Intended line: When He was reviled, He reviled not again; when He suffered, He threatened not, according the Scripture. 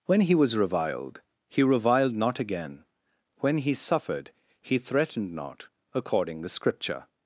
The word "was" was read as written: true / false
true